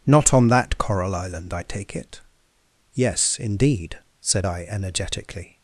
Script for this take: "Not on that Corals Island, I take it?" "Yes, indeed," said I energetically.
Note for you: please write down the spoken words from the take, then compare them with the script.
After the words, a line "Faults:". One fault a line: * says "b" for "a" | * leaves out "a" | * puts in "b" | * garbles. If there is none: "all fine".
"Not on that Coral Island, I take it?" "Yes, indeed," said I energetically.
Faults:
* says "Coral" for "Corals"